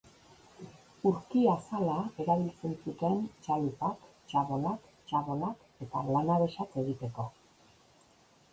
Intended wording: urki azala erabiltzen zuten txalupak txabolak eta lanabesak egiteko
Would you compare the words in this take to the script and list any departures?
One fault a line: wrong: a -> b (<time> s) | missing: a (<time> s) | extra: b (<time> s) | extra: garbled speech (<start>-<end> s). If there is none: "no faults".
extra: txabolak (5.1 s)